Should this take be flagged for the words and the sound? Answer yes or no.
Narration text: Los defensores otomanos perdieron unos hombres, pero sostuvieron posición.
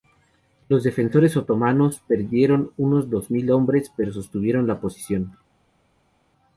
yes